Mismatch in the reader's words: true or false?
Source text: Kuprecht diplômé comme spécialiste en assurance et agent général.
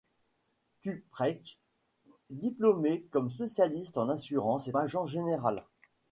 false